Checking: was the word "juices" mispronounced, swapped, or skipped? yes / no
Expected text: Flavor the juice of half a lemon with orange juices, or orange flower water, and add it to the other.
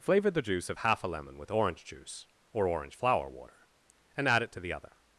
yes